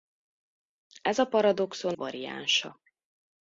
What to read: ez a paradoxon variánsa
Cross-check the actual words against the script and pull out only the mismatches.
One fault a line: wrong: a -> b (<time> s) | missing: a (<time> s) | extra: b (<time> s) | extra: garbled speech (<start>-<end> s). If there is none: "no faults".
no faults